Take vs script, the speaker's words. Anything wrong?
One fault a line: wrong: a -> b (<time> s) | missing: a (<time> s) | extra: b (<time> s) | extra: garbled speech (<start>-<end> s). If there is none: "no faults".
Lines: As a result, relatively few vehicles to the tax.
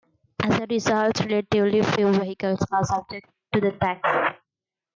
extra: are subject (2.7 s)